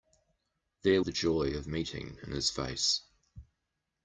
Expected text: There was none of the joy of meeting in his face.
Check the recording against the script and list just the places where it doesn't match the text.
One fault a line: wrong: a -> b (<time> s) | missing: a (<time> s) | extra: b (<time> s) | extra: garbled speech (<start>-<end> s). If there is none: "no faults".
missing: was none of (1.0 s)